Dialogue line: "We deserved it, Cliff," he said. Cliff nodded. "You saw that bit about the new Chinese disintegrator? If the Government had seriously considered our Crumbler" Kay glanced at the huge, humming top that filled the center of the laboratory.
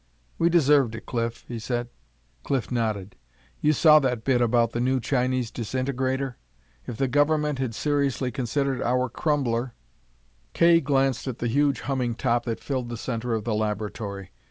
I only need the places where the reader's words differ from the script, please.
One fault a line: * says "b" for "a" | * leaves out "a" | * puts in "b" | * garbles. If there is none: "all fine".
all fine